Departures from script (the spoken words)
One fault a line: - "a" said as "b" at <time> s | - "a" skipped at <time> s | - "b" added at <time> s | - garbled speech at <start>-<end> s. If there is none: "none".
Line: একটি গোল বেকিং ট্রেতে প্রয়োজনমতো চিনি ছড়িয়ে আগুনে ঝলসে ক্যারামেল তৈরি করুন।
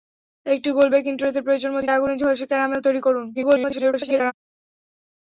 - "চিনি ছড়িয়ে" skipped at 1.9 s
- garbled speech at 3.3-4.3 s